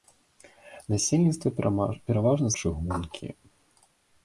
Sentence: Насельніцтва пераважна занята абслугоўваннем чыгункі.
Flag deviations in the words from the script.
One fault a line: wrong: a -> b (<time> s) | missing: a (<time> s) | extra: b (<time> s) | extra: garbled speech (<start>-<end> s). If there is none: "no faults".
missing: занята абслугоўваннем (2.5 s)